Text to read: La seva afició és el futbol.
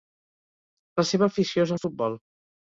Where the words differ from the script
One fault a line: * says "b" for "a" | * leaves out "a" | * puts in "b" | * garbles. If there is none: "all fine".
all fine